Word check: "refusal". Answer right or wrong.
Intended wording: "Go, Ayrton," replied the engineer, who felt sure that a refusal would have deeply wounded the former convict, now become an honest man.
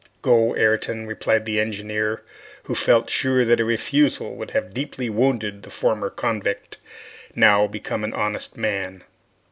right